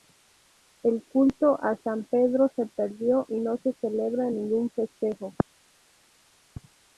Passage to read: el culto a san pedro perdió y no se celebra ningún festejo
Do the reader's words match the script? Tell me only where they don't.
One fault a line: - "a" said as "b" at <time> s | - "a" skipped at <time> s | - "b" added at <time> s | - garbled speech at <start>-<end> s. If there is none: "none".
- "se" added at 2.5 s